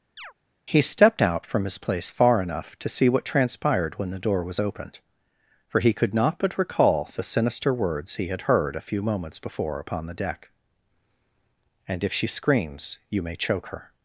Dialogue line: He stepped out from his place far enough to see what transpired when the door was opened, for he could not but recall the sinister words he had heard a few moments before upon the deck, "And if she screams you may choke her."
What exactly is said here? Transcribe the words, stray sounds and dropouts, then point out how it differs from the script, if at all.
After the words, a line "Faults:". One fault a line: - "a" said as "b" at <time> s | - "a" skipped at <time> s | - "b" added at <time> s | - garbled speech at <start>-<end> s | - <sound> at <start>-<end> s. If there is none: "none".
He stepped out from his place far enough to see what transpired when the door was opened, for he could not but recall the sinister words he had heard a few moments before upon the deck, "And if she screams you may choke her."
Faults:
- chirp at 0.2-0.3 s